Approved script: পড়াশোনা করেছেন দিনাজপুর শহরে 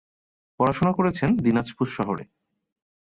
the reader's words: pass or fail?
pass